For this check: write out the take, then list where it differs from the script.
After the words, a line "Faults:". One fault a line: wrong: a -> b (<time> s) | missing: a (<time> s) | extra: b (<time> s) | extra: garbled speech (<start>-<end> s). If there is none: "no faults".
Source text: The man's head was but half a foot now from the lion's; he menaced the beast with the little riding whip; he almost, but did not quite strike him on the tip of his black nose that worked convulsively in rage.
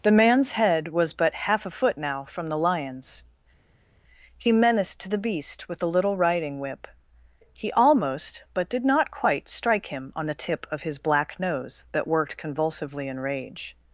The man's head was but half a foot now from the lion's; he menaced the beast with the little riding whip; he almost, but did not quite strike him on the tip of his black nose that worked convulsively in rage.
Faults:
no faults